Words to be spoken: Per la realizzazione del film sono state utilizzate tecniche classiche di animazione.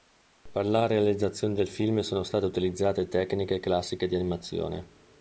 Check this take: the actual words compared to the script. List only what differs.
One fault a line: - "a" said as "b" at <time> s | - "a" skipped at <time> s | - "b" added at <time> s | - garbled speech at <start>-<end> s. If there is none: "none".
none